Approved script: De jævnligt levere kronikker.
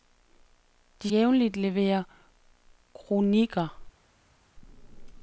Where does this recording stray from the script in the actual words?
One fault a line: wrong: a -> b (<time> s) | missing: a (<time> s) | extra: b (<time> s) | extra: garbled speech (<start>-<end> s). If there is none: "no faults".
no faults